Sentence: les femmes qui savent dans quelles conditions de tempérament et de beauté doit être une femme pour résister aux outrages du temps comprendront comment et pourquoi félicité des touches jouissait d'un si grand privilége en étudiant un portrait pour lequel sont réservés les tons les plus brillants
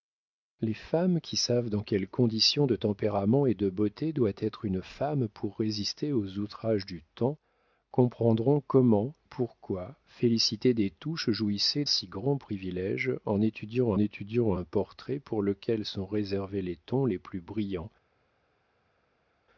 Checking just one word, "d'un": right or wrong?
wrong